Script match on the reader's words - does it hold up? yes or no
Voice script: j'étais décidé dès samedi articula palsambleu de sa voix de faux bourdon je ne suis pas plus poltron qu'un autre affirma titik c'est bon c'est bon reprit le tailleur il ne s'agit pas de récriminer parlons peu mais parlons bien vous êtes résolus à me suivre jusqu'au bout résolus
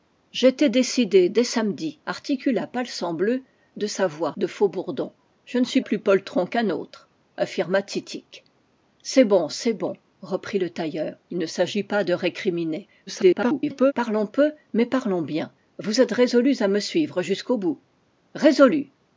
no